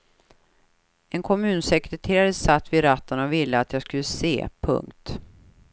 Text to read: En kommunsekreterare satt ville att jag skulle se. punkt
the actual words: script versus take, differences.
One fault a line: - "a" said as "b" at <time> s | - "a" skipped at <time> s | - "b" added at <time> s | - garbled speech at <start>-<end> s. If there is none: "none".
- "vid ratten och" added at 2.7 s